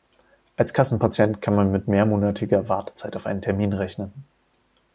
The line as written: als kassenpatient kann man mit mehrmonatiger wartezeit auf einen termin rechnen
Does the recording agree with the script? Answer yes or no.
yes